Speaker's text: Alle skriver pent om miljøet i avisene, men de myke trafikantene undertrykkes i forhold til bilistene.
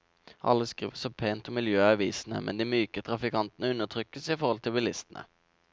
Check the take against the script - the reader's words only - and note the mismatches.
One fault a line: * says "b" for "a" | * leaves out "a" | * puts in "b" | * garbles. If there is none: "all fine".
* puts in "så"